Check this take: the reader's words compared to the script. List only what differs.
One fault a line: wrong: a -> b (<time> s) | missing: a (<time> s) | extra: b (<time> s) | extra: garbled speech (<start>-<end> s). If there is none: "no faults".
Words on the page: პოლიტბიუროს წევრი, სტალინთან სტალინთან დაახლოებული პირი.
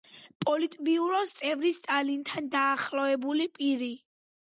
missing: სტალინთან (2.5 s)